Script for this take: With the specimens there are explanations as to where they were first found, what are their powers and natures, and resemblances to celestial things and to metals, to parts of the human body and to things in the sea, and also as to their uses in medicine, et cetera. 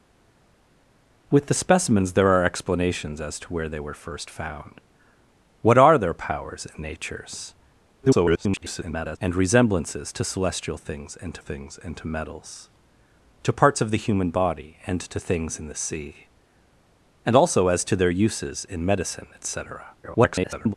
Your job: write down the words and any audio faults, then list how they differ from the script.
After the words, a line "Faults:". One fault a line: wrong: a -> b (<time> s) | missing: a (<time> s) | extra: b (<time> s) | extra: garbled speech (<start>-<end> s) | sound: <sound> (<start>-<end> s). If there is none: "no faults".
With the specimens there are explanations as to where they were first found, what are their powers and natures, [garbled] and resemblances to celestial things and to things and to metals, to parts of the human body and to things in the sea, and also as to their uses in medicine, et cetera. [garbled]
Faults:
extra: garbled speech (8.0-9.2 s)
extra: things and to (11.4 s)
extra: garbled speech (20.0-20.7 s)